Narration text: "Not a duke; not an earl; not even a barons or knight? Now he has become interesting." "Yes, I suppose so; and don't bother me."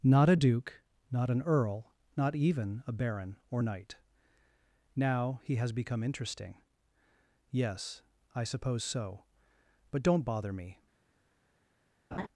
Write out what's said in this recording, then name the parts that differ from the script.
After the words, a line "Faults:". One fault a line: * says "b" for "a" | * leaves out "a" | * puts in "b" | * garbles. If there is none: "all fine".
"Not a duke; not an earl; not even a baron or knight? Now he has become interesting." "Yes, I suppose so; but don't bother me."
Faults:
* says "baron" for "barons"
* says "but" for "and"